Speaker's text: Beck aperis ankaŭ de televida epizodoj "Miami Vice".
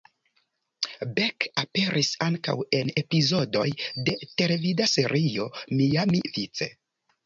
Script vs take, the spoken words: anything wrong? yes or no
yes